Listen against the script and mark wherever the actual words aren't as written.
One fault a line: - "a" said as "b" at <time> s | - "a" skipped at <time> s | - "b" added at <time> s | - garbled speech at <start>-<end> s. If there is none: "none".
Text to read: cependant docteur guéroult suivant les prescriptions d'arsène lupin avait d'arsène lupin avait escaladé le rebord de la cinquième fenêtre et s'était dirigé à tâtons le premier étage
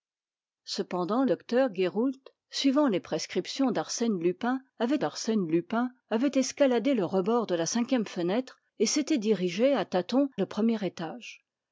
none